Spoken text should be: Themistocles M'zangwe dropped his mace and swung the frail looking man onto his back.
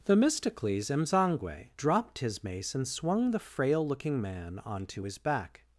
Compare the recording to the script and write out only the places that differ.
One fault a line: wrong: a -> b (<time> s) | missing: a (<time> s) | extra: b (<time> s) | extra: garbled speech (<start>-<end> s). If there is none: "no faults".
no faults